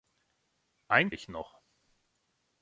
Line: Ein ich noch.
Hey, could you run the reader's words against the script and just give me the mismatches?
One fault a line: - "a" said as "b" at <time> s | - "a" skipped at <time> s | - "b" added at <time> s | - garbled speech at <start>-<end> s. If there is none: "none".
none